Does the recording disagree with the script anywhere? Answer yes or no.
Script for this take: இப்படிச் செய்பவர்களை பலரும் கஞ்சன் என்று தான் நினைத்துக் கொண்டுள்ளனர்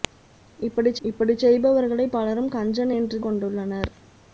yes